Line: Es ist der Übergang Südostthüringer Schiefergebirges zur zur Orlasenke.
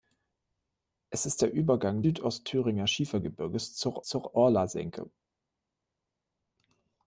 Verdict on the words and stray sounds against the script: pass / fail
pass